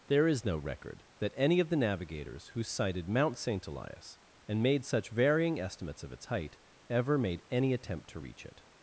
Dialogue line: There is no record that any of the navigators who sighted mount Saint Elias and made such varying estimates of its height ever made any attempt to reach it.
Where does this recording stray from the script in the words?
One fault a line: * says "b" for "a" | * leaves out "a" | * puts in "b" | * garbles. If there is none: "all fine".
all fine